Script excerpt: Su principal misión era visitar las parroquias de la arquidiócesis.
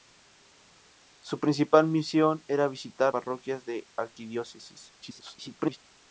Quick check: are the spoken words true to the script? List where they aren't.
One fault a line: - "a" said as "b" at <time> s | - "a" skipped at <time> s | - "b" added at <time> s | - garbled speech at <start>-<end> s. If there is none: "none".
- "las" skipped at 3.1 s
- garbled speech at 5.0-5.8 s